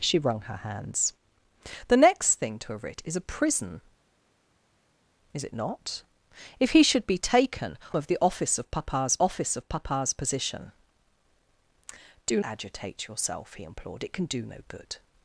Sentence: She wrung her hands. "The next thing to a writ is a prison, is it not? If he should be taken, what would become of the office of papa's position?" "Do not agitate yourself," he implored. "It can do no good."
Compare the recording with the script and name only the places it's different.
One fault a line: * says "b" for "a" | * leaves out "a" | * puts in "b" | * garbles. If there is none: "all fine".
* says "of the office" for "what would become"
* says "papa's" for "the"
* leaves out "not"